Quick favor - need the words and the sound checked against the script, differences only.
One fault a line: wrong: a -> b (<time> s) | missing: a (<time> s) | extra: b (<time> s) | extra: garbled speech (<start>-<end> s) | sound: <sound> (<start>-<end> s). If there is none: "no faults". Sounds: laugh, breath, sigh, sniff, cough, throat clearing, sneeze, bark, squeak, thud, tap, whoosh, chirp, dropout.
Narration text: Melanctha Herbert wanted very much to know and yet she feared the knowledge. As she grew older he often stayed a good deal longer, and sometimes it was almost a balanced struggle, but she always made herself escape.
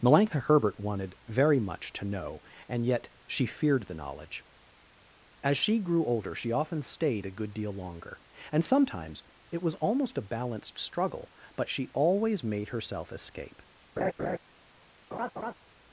wrong: he -> she (6.3 s)
sound: laugh (14.0-14.4 s)
sound: laugh (15.1-15.5 s)